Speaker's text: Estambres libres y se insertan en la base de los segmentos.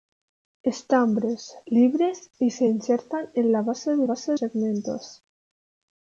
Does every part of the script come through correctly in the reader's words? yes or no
no